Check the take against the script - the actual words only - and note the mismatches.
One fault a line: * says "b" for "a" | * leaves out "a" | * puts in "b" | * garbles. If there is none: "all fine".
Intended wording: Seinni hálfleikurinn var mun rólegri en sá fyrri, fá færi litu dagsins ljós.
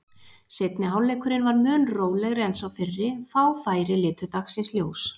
all fine